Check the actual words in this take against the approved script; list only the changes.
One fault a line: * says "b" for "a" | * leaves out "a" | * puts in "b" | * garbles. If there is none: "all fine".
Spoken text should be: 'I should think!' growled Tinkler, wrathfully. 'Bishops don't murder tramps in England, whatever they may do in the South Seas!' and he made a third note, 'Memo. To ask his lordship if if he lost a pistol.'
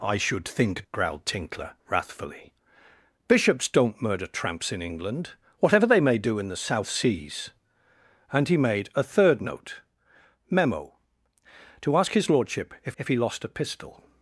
all fine